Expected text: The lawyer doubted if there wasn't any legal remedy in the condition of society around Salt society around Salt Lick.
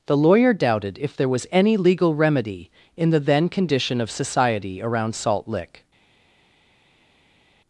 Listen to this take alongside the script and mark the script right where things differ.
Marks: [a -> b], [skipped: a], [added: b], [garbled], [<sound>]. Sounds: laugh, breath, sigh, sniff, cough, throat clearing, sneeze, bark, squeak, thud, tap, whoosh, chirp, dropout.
The lawyer doubted if there [wasn't -> was] any legal remedy in the [added: then] condition of society around Salt [skipped: society around Salt] Lick.